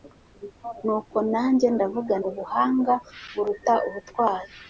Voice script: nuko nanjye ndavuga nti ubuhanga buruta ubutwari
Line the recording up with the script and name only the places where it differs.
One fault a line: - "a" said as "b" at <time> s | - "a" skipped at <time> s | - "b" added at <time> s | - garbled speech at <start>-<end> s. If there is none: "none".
- "nti" skipped at 2.1 s